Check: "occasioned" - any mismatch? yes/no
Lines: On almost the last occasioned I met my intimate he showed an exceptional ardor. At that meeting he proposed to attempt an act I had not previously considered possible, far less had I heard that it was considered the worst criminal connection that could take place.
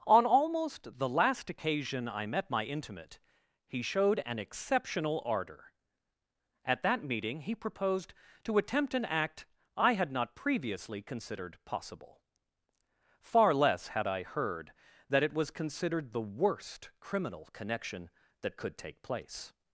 yes